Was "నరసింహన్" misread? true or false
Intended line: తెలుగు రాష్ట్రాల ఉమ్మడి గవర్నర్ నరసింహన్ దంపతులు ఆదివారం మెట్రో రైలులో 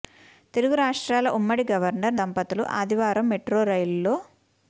true